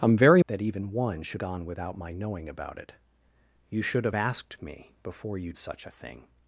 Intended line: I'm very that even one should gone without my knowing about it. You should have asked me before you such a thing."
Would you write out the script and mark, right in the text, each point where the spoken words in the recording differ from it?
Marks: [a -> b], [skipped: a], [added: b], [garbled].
I'm very that even one should gone without my knowing about it. You should have asked me before you such a thing."